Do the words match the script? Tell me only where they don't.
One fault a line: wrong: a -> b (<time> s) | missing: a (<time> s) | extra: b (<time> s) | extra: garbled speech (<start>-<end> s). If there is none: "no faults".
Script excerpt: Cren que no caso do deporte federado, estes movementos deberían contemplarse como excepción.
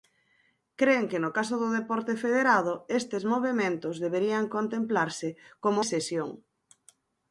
no faults